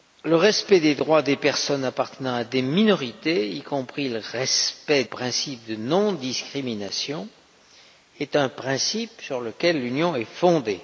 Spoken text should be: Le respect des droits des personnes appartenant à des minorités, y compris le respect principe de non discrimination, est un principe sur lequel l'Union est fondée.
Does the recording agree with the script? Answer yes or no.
yes